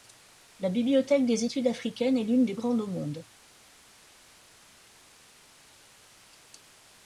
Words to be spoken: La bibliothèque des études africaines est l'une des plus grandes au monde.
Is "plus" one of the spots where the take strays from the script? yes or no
yes